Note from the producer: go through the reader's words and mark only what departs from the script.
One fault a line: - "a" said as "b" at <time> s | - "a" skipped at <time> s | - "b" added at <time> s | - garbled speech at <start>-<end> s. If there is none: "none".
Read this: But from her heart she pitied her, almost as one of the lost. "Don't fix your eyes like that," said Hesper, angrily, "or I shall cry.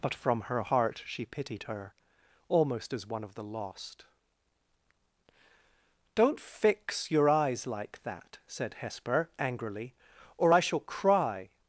none